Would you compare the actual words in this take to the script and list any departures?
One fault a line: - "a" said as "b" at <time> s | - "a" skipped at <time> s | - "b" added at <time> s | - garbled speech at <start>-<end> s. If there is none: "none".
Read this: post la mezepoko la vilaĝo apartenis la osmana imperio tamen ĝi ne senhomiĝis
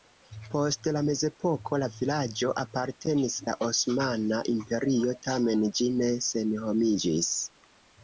none